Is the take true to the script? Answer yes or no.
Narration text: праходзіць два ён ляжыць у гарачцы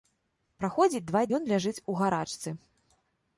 yes